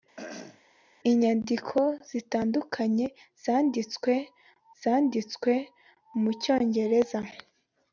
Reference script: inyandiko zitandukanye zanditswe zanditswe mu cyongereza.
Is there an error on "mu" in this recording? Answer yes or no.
no